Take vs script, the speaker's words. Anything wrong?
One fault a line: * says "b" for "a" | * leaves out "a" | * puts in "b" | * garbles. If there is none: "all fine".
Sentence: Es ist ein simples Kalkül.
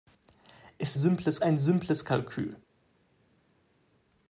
* says "simples" for "ist"